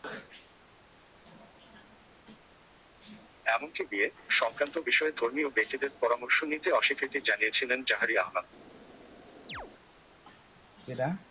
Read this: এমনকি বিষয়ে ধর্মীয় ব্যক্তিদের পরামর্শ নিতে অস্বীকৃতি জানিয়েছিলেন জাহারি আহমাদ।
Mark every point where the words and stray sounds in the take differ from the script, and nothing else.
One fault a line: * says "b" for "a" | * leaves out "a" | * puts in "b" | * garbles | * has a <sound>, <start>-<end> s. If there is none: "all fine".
* puts in "বিয়ে-সংক্রান্ত"
* has a chirp, 9.5-9.7 s